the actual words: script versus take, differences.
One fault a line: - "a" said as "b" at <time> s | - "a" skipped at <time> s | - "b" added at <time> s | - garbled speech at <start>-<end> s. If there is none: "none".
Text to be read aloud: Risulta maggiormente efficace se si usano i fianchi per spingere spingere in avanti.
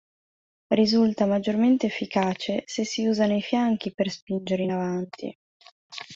- "spingere" skipped at 4.6 s